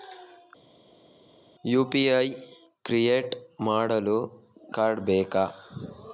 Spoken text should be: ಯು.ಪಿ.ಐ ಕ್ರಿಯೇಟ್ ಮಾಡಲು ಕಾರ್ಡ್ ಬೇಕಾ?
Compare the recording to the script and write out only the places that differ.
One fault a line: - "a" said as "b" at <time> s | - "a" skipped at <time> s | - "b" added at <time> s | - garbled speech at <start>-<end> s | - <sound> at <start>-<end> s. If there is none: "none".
none